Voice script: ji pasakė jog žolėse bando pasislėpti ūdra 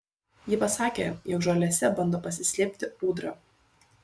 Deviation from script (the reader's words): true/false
false